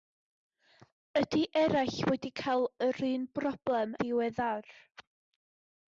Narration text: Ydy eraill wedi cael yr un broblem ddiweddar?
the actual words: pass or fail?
pass